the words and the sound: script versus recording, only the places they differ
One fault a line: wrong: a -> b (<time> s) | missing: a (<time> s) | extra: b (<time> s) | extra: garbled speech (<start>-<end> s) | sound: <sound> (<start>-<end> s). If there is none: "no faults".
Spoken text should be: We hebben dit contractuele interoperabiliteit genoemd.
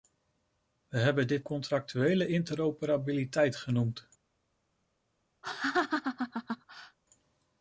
sound: laugh (5.4-7.0 s)